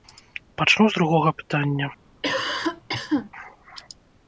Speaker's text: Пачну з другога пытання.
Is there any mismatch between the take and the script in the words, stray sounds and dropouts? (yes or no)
yes